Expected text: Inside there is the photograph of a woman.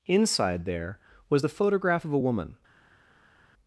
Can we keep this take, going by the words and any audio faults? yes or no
no